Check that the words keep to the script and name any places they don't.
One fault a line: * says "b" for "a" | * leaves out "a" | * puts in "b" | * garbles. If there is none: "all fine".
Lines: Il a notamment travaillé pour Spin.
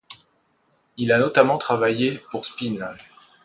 all fine